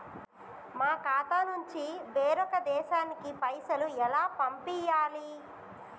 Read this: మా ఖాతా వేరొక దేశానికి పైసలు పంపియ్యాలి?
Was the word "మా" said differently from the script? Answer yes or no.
no